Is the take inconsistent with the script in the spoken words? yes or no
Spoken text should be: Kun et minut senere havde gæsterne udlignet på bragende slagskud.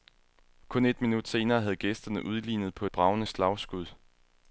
no